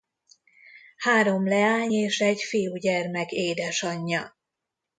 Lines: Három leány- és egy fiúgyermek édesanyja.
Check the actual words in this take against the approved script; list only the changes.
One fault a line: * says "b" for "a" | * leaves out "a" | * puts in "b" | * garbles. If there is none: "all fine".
all fine